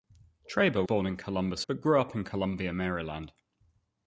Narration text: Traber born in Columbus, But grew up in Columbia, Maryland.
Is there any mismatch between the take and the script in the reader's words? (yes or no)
no